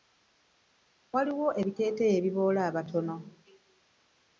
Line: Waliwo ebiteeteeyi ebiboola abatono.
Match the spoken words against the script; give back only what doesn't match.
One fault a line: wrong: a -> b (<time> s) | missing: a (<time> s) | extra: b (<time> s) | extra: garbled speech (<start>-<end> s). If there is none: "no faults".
no faults